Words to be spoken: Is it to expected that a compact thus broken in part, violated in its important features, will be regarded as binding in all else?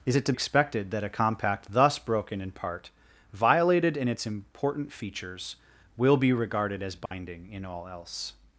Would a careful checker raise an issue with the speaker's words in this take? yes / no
no